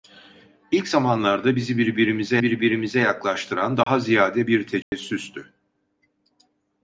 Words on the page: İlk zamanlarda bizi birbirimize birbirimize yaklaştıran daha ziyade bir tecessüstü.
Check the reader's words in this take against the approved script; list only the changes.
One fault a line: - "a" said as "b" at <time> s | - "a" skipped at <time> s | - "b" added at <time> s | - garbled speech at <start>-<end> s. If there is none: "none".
none